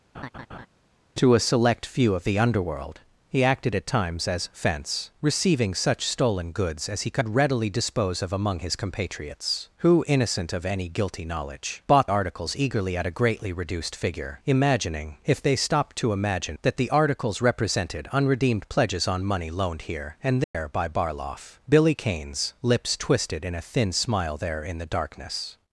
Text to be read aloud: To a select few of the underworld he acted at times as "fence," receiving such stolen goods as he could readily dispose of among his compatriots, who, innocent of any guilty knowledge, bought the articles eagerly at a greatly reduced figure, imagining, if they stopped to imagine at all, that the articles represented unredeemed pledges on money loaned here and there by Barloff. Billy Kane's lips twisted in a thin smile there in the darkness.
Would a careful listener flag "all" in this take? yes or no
yes